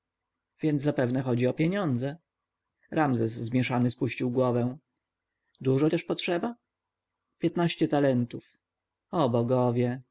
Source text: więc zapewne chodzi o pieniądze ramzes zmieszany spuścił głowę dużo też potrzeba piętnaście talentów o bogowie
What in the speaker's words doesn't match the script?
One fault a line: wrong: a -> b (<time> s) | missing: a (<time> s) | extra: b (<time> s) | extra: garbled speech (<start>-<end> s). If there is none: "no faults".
no faults